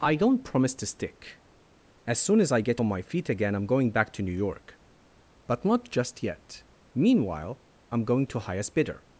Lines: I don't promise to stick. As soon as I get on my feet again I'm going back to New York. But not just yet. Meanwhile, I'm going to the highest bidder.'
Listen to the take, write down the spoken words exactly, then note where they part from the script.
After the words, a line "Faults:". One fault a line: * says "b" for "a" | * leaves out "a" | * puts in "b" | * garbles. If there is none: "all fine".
I don't promise to stick. As soon as I get on my feet again I'm going back to New York. But not just yet. Meanwhile, I'm going to highest bidder.'
Faults:
* leaves out "the"